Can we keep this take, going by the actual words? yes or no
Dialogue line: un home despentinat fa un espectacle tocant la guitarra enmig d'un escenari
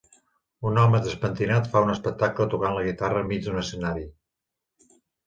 yes